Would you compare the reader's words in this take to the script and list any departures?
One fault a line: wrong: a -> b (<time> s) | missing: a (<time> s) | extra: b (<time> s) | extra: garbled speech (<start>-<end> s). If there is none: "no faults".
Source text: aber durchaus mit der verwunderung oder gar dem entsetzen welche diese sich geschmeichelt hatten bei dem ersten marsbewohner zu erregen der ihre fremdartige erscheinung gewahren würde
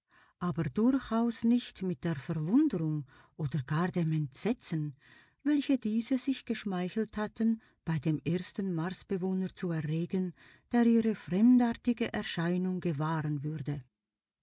extra: nicht (1.4 s)